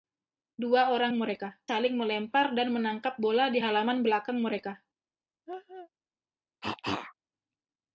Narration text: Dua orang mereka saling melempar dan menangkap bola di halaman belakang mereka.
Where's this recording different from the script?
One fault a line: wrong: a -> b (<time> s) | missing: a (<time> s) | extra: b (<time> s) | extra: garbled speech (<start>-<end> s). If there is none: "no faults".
no faults